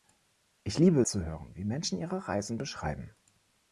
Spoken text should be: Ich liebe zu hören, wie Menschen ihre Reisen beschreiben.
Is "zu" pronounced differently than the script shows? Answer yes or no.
no